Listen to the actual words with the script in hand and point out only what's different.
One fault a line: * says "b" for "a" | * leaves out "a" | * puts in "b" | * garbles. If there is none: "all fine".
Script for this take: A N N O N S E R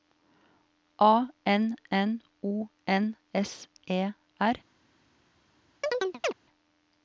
all fine